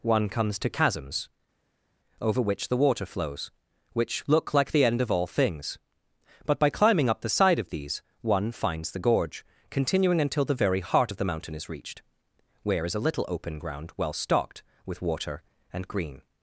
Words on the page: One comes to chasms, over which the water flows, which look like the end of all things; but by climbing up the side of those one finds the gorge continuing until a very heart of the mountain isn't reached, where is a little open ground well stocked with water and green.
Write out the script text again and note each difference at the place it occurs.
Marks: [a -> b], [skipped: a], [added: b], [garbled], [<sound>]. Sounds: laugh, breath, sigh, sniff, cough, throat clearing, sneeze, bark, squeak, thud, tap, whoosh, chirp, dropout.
One comes to chasms, over which the water flows, which look like the end of all things; but by climbing up the side of [those -> these] one finds the gorge continuing until [a -> the] very heart of the mountain [isn't -> is] reached, where is a little open ground well stocked with water and green.